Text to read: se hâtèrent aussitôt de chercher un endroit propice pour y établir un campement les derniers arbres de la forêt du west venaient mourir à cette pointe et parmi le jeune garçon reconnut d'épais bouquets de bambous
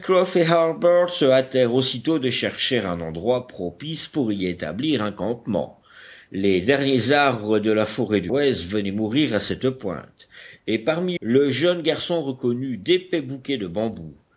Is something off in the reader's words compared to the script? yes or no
no